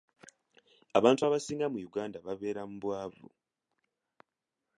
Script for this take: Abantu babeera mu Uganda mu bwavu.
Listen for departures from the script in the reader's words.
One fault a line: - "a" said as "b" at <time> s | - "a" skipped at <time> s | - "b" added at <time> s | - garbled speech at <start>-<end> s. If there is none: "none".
- "babeera" said as "abasinga" at 1.3 s
- "babeera" added at 2.2 s